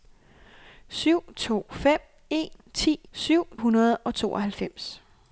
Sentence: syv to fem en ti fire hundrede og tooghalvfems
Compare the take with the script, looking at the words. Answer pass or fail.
fail